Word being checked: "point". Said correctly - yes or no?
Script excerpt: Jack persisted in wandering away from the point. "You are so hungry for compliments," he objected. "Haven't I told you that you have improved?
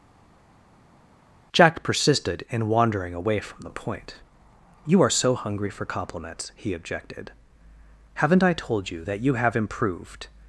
yes